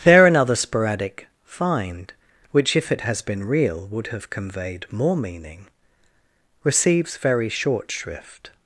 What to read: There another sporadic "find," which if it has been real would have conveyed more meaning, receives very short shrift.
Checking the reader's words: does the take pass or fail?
pass